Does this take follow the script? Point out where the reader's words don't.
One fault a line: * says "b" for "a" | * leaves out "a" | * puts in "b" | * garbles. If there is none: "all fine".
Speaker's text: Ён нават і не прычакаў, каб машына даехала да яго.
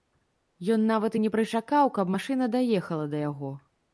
all fine